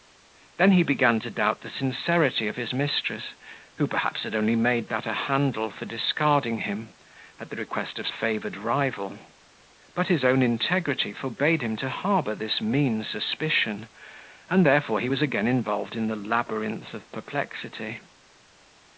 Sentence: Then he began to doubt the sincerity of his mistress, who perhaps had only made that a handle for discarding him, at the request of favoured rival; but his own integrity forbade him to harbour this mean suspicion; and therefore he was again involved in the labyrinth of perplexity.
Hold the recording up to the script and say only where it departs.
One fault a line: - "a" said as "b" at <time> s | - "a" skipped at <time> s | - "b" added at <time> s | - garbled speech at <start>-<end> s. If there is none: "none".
none